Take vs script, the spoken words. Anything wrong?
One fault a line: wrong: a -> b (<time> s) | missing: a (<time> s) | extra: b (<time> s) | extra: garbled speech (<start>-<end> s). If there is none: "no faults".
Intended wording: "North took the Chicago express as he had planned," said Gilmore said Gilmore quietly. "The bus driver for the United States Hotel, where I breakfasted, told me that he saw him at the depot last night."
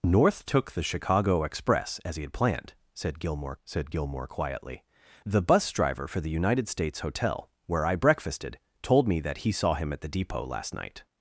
no faults